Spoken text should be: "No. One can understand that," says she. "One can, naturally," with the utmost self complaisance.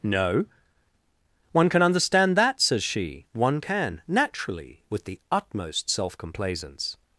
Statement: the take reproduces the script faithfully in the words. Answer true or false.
true